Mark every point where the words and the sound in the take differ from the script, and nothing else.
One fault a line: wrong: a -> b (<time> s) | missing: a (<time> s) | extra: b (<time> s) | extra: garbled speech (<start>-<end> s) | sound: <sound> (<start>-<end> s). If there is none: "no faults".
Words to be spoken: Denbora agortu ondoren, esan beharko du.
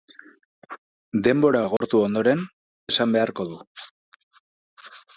sound: dropout (1.8-1.8 s)